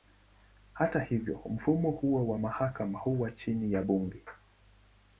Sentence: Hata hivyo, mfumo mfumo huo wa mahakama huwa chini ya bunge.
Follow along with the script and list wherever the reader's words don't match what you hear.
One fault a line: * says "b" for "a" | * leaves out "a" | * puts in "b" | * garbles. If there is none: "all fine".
* leaves out "mfumo"